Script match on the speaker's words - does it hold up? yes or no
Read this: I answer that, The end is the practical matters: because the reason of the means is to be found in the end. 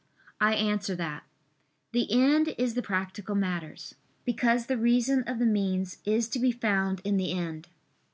yes